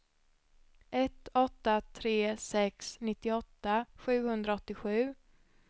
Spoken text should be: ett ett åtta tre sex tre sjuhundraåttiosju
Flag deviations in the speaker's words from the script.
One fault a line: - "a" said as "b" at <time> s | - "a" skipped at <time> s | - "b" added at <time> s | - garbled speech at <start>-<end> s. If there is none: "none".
- "ett" skipped at 1.3 s
- "tre" said as "nittioåtta" at 3.0 s